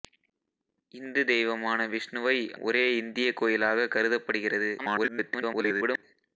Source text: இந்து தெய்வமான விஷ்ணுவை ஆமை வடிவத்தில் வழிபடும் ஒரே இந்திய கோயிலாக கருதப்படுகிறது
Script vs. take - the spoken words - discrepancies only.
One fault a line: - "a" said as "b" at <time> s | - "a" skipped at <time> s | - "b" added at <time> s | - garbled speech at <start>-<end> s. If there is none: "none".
- "ஆமை வடிவத்தில் வழிபடும்" skipped at 2.4 s
- garbled speech at 4.8-6.0 s